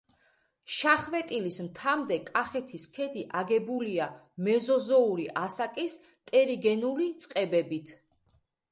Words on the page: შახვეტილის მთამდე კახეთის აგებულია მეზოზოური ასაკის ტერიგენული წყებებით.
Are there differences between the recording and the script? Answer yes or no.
yes